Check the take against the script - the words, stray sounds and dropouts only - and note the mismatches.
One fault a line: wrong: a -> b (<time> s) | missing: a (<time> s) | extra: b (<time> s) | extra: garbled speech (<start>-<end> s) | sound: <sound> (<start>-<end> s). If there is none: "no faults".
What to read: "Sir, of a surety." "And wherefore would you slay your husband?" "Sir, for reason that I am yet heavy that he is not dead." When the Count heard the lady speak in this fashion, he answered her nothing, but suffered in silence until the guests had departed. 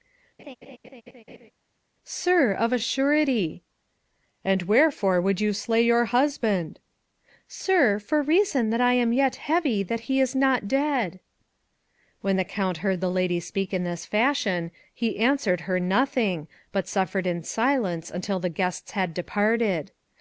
sound: laugh (0.4-1.5 s)